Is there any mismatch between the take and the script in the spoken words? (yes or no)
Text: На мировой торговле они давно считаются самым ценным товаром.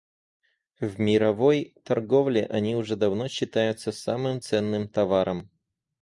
yes